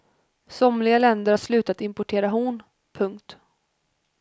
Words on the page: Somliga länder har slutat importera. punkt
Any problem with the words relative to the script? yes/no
yes